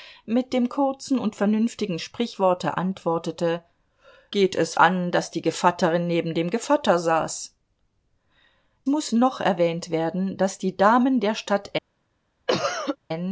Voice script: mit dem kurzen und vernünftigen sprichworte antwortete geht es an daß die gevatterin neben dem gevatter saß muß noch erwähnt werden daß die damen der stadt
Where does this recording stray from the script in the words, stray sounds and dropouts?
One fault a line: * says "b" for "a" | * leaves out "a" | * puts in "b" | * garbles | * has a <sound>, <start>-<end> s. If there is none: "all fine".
* has a cough, 12.5-13.0 s